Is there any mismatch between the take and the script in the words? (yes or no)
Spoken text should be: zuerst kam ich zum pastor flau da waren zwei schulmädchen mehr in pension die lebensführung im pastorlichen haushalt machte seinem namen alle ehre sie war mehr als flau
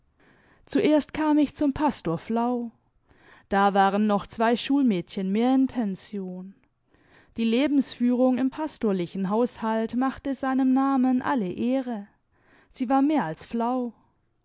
yes